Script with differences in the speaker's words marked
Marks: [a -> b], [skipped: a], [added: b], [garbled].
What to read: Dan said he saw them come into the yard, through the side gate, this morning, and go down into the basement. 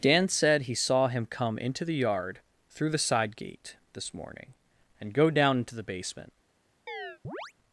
Dan said he saw [them -> him] come into the yard, through the side gate, this morning, and go down into the basement.